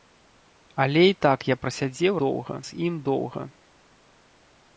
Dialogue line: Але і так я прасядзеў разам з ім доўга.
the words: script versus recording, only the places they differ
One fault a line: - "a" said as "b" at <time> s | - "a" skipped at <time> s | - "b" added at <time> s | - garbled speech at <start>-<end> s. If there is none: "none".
- "разам" said as "доўга" at 2.2 s